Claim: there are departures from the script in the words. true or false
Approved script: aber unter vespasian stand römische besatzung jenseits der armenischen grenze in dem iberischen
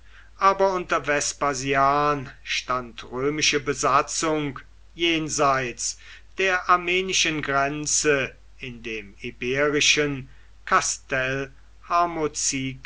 false